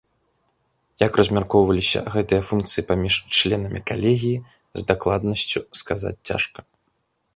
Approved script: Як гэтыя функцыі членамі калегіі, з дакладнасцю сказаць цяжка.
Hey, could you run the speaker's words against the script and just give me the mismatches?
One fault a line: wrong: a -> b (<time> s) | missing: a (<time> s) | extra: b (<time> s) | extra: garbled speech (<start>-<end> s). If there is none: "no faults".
extra: размяркоўваліся (1.2 s)
extra: паміж (2.9 s)